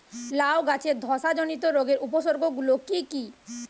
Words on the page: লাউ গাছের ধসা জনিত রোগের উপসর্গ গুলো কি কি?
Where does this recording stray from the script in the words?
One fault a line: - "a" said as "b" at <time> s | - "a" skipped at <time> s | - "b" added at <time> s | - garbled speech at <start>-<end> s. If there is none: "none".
none